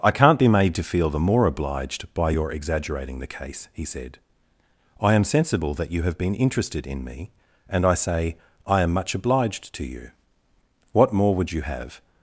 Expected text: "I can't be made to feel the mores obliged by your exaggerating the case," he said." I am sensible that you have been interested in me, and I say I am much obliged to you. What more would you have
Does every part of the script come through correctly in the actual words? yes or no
no